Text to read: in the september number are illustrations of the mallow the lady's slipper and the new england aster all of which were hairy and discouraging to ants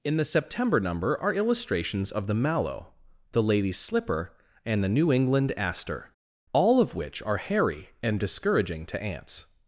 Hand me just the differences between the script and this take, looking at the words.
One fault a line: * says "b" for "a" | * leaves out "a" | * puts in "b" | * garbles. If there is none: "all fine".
* says "are" for "were"